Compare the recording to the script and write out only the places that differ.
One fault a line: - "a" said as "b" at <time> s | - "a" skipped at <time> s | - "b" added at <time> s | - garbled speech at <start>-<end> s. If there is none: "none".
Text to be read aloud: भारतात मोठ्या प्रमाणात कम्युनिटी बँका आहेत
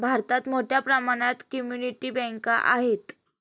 none